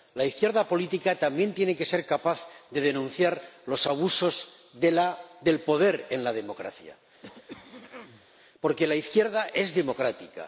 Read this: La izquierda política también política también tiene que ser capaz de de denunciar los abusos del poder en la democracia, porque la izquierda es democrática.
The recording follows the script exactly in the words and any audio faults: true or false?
false